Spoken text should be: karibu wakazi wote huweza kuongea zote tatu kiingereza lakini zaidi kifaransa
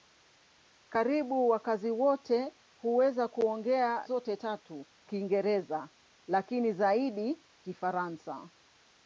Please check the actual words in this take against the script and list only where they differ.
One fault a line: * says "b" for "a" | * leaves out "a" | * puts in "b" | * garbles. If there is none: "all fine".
all fine